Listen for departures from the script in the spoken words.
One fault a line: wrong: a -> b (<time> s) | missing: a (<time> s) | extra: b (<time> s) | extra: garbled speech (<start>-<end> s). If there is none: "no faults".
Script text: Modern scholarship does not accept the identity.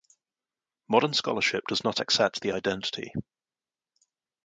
no faults